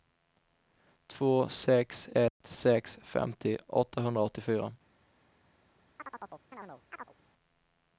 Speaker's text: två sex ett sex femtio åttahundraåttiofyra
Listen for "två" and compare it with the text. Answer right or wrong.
right